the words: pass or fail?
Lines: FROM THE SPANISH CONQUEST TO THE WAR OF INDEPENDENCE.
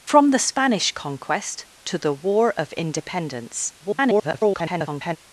fail